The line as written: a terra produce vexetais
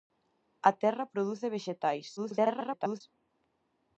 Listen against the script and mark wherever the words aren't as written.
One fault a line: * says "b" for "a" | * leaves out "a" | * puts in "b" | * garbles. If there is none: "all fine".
* garbles